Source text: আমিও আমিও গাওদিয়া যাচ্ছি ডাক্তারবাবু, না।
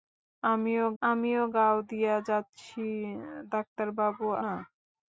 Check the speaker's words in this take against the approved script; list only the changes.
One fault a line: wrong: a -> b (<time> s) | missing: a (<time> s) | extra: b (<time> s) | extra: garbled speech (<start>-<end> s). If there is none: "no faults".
no faults